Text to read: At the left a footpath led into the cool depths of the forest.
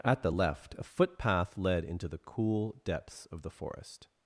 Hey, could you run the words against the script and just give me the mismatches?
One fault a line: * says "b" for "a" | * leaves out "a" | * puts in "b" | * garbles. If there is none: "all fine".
all fine